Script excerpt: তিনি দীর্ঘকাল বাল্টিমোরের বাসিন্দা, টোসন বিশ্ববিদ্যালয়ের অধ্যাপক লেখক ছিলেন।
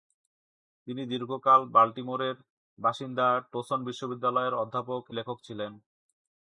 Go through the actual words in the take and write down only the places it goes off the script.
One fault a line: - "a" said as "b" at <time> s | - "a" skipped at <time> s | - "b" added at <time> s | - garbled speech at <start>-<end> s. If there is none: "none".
none